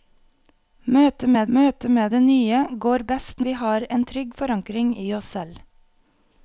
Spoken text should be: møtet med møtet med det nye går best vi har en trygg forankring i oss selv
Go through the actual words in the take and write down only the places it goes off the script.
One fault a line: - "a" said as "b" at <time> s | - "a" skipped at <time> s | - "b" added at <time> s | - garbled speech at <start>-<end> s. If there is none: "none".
none